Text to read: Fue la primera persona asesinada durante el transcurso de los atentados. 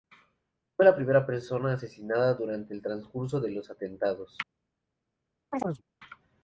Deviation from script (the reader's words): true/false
false